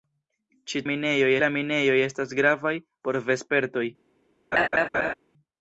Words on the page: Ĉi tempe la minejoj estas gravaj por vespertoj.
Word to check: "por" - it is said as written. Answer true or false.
true